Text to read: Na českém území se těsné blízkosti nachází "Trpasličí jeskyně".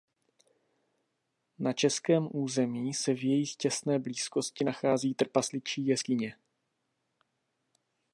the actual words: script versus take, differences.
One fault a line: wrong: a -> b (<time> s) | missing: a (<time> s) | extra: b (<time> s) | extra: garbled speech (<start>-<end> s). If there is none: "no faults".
extra: v jejich (3.1 s)